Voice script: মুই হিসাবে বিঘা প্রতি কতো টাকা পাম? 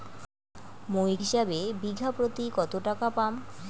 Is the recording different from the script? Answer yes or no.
no